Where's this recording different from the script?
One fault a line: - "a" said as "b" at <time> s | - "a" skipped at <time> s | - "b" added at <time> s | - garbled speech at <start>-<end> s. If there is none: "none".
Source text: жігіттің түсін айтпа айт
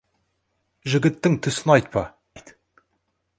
none